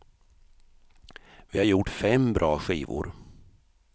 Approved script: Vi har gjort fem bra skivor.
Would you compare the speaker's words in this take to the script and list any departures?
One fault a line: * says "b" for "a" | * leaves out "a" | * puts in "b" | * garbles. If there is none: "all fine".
all fine